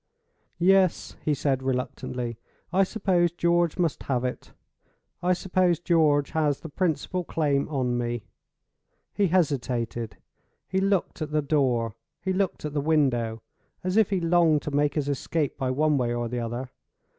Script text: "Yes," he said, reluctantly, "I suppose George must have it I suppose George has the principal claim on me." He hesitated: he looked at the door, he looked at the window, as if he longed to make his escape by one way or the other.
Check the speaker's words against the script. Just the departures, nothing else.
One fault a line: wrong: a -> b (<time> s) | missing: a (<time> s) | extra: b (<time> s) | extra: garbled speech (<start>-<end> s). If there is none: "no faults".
no faults